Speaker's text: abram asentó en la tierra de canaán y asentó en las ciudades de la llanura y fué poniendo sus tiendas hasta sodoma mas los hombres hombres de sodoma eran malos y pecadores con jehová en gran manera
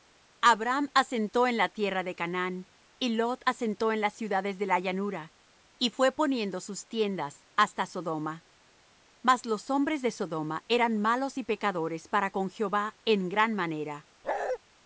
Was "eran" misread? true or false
false